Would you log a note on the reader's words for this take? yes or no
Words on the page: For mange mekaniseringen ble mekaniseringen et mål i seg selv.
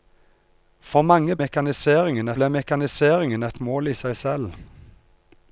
no